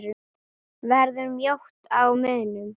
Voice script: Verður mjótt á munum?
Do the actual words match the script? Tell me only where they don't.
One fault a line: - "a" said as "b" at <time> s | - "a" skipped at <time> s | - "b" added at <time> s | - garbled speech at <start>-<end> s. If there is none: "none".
none